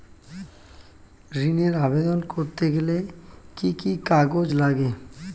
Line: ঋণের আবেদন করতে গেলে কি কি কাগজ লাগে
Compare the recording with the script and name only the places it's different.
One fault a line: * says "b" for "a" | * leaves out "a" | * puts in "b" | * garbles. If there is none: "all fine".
all fine